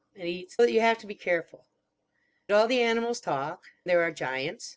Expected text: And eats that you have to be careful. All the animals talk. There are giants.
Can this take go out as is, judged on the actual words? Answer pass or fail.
pass